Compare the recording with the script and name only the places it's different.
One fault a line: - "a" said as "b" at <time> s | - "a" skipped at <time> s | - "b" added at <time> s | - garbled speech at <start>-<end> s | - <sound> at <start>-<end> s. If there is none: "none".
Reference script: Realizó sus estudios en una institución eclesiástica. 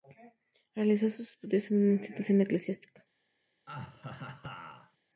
- laugh at 3.7-5.0 s